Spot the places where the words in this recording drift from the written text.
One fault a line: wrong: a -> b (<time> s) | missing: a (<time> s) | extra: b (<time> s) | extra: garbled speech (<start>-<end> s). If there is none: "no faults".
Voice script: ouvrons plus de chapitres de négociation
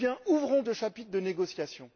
missing: plus (0.6 s)